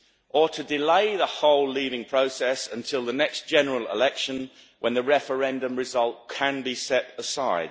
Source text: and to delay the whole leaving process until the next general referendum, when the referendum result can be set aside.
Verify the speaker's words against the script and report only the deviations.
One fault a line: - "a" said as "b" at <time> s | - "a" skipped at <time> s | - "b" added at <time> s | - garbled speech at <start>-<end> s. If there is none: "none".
- "and" said as "or" at 0.3 s
- "referendum" said as "election" at 3.9 s